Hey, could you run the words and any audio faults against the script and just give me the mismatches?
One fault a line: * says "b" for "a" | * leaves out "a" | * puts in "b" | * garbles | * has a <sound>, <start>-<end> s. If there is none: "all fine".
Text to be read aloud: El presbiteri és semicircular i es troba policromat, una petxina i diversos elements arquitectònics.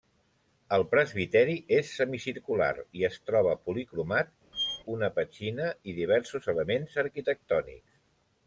* has a squeak, 4.5-4.8 s